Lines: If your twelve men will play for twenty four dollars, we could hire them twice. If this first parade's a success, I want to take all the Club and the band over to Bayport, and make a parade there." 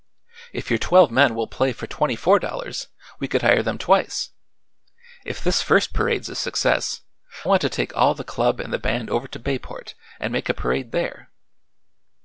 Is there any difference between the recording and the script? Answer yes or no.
yes